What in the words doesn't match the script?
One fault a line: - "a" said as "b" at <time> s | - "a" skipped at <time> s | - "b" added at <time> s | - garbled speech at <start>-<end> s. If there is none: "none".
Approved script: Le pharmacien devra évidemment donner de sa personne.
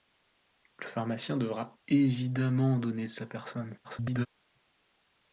- garbled speech at 3.8-4.3 s